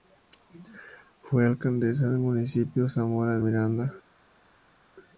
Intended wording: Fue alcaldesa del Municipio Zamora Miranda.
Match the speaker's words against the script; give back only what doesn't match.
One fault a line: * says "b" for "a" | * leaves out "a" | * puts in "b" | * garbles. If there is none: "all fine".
all fine